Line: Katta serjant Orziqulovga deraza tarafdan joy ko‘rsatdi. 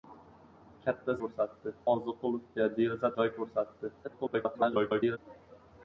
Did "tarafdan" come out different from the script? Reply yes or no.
yes